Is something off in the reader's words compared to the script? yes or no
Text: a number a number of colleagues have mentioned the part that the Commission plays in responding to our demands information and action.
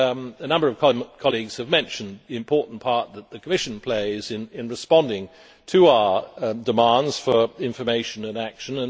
yes